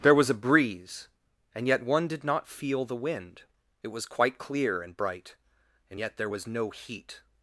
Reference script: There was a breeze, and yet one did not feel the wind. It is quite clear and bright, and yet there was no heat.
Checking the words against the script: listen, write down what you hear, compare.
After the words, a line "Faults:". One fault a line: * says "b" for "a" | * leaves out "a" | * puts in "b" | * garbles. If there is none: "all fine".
There was a breeze, and yet one did not feel the wind. It was quite clear and bright, and yet there was no heat.
Faults:
* says "was" for "is"